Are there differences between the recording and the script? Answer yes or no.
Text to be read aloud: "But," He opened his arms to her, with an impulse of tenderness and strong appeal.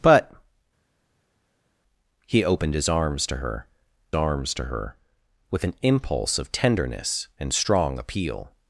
yes